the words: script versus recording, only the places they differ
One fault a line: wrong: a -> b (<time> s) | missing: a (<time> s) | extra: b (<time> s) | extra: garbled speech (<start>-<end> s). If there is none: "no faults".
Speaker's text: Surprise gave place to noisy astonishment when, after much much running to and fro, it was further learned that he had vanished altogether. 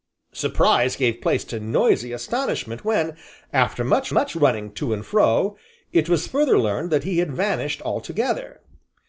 no faults